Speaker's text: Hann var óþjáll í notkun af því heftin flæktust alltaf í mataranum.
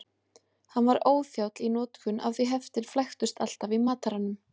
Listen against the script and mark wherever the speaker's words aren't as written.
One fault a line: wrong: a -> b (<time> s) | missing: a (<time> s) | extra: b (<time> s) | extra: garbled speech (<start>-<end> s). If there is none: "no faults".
no faults